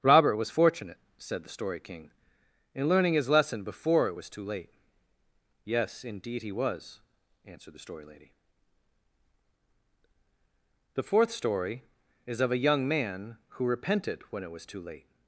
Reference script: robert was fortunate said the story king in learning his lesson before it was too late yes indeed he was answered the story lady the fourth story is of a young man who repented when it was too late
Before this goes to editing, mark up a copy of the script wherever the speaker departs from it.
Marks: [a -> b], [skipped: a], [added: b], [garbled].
robert was fortunate said the story king in learning his lesson before it was too late yes indeed he was answered the story lady the fourth story is of a young man who repented when it was too late